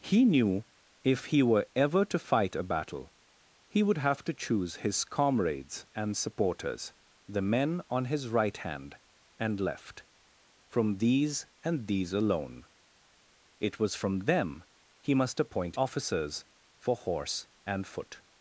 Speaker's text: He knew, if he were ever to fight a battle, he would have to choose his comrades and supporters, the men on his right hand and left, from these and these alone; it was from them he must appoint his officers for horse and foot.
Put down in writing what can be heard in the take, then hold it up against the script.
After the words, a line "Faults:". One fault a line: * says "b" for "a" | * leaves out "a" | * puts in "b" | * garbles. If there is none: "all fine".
He knew, if he were ever to fight a battle, he would have to choose his comrades and supporters, the men on his right hand and left, from these and these alone; it was from them he must appoint officers for horse and foot.
Faults:
* leaves out "his"